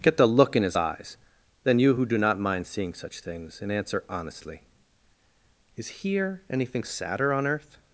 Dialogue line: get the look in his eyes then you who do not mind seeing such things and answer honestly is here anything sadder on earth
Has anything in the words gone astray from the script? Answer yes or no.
no